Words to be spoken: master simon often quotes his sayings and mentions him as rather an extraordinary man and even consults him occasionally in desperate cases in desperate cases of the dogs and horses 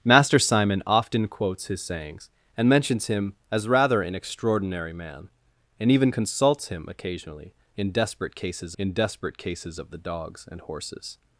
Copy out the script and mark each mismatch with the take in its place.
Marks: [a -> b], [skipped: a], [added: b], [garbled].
master simon often quotes his sayings and mentions him as rather an extraordinary man and even consults him occasionally in desperate cases in desperate cases of the dogs and horses